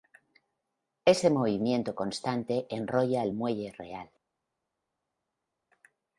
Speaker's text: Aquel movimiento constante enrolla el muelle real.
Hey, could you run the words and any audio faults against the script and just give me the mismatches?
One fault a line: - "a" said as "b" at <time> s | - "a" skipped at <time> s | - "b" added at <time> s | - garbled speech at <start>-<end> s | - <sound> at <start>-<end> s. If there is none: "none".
- "Aquel" said as "Ese" at 1.1 s